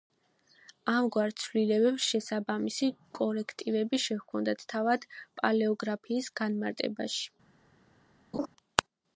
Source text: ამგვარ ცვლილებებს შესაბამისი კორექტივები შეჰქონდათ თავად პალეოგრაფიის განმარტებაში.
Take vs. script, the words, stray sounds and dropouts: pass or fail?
fail